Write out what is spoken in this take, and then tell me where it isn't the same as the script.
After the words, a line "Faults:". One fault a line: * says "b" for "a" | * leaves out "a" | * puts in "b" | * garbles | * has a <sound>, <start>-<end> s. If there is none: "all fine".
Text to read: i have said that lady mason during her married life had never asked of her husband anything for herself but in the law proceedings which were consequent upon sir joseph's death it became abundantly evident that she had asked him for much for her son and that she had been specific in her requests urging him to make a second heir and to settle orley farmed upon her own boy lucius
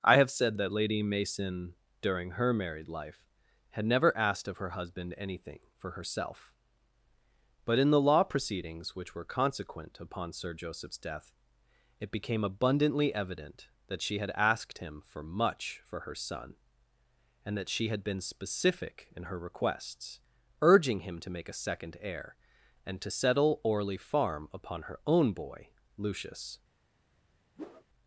i have said that lady mason during her married life had never asked of her husband anything for herself but in the law proceedings which were consequent upon sir joseph's death it became abundantly evident that she had asked him for much for her son and that she had been specific in her requests urging him to make a second heir and to settle orley farm upon her own boy lucius
Faults:
* says "farm" for "farmed"
* has a whoosh, 27.6-27.8 s